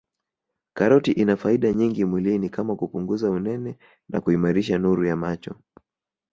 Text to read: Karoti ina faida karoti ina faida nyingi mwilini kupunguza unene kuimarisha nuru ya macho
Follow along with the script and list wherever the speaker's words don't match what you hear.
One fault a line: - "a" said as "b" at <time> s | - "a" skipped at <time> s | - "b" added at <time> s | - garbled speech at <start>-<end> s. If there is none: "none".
- "karoti ina faida" skipped at 1.7 s
- "kama" added at 2.5 s
- "na" added at 4.1 s